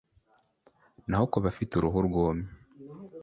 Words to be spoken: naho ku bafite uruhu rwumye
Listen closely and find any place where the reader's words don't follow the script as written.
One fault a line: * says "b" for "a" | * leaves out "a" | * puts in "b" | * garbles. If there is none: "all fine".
all fine